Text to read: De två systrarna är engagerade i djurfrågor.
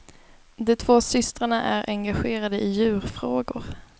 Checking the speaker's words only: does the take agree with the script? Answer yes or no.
yes